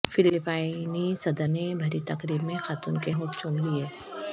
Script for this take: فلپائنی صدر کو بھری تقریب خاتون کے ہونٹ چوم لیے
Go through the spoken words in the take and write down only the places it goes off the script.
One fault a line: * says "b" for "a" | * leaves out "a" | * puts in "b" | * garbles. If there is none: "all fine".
* says "نے" for "کو"
* puts in "میں"